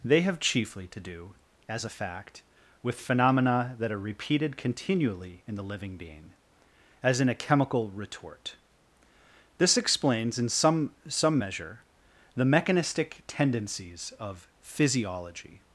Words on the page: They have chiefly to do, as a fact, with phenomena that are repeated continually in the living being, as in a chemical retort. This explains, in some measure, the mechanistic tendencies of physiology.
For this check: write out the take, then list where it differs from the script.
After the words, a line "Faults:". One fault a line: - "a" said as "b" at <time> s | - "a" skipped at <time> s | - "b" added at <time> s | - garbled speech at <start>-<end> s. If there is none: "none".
They have chiefly to do, as a fact, with phenomena that are repeated continually in the living being, as in a chemical retort. This explains, in some some measure, the mechanistic tendencies of physiology.
Faults:
- "some" added at 11.1 s